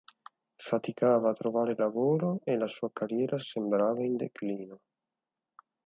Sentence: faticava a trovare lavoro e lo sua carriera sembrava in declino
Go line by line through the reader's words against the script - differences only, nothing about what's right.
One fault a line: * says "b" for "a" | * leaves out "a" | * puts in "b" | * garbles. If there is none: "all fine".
* says "la" for "lo"